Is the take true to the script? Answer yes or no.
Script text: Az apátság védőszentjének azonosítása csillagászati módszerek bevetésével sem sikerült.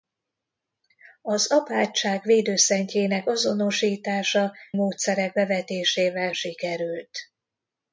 no